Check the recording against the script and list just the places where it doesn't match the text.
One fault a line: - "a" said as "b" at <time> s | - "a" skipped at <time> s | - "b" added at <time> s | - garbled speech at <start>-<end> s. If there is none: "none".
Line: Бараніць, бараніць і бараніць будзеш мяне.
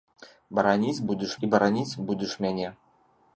- "бараніць" said as "будзеш" at 1.1 s